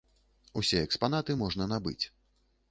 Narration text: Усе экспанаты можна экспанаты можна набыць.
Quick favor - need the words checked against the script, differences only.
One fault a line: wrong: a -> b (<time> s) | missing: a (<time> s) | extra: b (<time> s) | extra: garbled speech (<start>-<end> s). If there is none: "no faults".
missing: экспанаты можна (1.7 s)